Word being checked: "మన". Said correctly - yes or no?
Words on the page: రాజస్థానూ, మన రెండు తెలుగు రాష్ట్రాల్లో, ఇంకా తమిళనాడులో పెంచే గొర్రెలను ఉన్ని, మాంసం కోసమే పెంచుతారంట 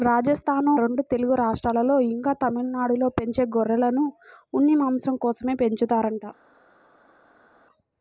no